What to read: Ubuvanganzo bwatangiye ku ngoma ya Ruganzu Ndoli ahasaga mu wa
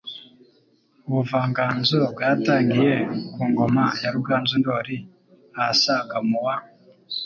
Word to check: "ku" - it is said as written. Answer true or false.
true